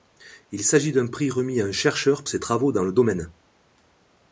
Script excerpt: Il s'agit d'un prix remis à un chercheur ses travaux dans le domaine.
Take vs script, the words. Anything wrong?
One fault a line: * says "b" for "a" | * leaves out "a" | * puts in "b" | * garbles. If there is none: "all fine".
all fine